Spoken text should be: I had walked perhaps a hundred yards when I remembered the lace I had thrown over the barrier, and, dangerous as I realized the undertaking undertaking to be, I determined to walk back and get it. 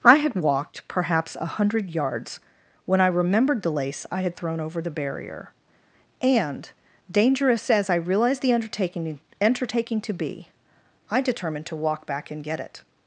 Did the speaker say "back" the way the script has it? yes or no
yes